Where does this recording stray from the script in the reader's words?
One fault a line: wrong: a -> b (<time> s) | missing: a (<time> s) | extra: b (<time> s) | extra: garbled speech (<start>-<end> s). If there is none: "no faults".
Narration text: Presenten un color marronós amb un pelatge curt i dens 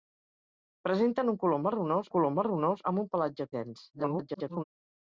extra: color marronós (2.1 s)
missing: curt (3.5 s)
extra: garbled speech (3.9-4.6 s)